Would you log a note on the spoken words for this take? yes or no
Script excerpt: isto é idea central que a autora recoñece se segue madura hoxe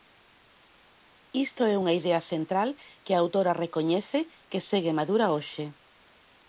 yes